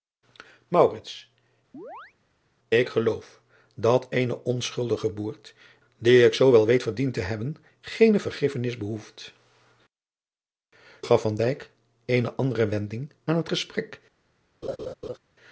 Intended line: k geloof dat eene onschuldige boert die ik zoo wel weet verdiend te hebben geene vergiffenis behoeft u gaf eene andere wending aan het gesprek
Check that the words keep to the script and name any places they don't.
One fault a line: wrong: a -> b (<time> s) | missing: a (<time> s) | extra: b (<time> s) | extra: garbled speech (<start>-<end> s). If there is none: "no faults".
missing: u (9.3 s)